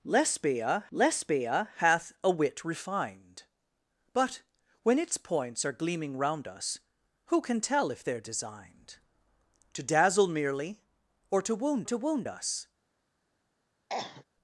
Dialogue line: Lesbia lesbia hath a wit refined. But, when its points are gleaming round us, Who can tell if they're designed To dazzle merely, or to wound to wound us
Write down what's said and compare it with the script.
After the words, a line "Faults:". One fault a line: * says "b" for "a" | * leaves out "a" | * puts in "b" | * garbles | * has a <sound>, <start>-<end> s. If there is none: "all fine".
Lesbia lesbia hath a wit refined. But, when its points are gleaming round us, Who can tell if they're designed To dazzle merely, or to wound to wound us
Faults:
* has a cough, 13.9-14.2 s